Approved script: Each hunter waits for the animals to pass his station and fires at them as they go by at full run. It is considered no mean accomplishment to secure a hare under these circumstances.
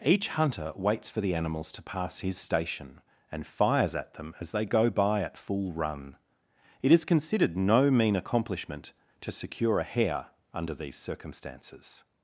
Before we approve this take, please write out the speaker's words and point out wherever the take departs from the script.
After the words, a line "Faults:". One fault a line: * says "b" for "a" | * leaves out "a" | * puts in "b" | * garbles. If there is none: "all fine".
Each hunter waits for the animals to pass his station and fires at them as they go by at full run. It is considered no mean accomplishment to secure a hare under these circumstances.
Faults:
all fine